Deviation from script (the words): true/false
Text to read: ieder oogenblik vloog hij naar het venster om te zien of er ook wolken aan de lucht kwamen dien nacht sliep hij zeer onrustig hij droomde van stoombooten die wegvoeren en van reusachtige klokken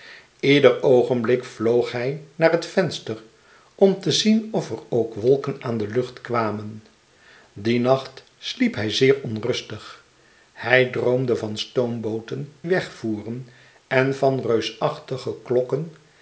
true